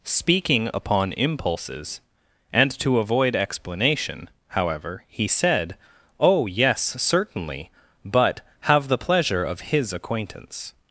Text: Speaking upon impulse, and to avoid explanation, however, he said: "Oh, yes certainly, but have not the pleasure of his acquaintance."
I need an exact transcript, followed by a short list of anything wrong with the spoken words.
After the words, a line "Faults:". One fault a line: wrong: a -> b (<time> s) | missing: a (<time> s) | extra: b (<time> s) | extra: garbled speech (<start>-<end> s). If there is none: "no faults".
Speaking upon impulses, and to avoid explanation, however, he said: "Oh, yes certainly, but have the pleasure of his acquaintance."
Faults:
wrong: impulse -> impulses (1.1 s)
missing: not (8.9 s)